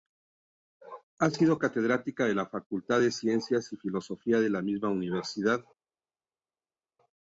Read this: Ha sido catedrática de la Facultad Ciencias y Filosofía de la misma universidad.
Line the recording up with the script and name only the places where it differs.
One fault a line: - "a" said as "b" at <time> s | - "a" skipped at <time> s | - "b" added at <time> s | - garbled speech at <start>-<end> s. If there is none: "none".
- "de" added at 3.0 s